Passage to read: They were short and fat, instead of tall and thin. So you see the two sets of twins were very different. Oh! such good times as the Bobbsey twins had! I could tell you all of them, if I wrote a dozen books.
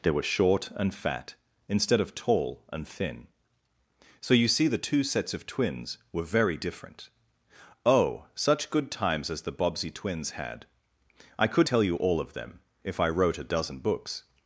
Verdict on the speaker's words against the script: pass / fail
pass